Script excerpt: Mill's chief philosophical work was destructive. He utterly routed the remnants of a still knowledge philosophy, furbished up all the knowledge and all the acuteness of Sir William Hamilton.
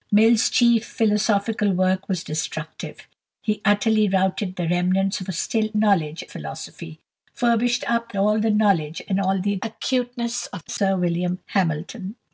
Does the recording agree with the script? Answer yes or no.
yes